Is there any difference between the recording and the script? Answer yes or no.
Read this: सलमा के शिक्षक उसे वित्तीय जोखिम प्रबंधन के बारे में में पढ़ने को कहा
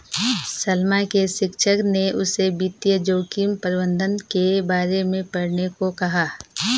yes